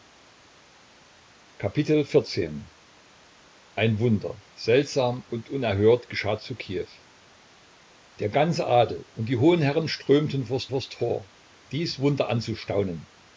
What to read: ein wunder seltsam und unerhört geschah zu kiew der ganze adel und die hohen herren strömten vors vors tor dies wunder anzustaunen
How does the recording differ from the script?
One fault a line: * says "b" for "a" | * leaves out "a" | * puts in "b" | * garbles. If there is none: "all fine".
all fine